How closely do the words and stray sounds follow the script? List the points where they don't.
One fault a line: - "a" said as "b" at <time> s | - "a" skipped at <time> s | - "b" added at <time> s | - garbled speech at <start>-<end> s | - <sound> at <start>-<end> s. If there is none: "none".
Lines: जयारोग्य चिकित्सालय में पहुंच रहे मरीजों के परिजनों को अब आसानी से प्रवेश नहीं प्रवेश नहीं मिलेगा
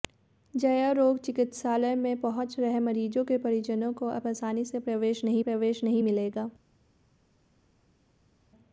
none